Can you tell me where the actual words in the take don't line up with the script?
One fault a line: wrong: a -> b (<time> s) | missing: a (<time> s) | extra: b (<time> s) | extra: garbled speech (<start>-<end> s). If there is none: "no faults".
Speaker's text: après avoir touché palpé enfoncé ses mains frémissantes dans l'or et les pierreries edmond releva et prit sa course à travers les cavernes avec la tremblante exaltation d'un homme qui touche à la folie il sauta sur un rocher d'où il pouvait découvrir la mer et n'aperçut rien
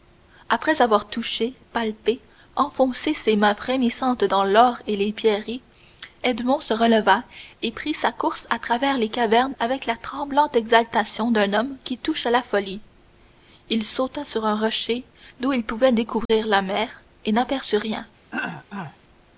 extra: se (6.6 s)